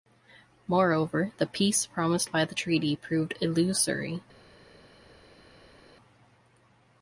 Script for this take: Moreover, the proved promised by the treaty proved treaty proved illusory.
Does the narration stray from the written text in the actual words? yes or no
yes